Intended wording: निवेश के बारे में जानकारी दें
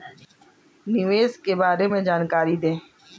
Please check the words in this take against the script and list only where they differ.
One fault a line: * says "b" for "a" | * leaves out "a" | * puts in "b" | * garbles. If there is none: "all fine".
all fine